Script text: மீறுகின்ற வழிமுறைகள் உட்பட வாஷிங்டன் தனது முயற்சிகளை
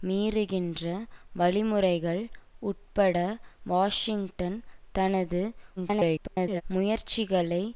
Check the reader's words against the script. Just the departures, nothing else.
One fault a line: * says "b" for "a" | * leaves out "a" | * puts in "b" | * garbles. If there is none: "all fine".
* garbles